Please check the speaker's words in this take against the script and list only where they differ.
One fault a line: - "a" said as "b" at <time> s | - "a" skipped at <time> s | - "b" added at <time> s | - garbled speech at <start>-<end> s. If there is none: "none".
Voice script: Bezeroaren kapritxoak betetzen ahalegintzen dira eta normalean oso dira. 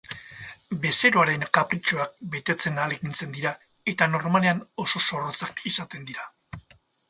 - "zorrotzak izaten" added at 5.1 s